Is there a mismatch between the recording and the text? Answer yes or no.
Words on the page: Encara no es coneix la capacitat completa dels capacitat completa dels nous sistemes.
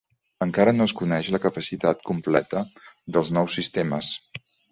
yes